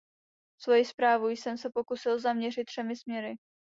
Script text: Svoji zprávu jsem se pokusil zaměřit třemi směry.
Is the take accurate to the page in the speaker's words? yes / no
yes